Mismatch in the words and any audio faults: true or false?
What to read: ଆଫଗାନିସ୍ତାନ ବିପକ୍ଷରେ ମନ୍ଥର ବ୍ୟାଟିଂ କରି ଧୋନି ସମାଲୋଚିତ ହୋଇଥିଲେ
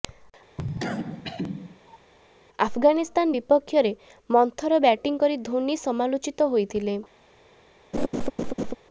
true